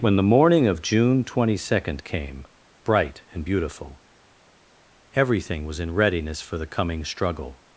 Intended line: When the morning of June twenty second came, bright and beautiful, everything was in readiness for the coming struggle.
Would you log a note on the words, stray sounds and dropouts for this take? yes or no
no